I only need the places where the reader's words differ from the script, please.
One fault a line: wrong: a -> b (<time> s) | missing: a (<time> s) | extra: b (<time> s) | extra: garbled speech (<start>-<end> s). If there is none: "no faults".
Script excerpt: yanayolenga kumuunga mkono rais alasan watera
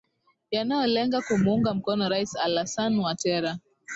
no faults